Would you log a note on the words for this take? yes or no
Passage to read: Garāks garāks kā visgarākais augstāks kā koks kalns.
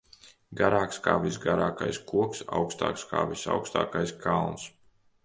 yes